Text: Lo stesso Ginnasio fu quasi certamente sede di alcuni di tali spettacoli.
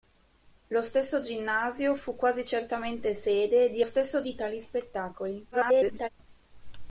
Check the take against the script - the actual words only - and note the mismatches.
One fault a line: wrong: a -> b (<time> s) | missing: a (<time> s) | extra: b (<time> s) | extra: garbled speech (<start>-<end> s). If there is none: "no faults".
wrong: alcuni -> stesso (3.8 s)
extra: garbled speech (5.5-6.1 s)